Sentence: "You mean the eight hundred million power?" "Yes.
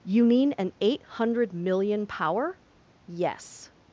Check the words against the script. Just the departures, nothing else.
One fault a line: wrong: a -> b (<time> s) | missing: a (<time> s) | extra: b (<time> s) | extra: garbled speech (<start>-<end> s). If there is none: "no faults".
wrong: the -> an (0.6 s)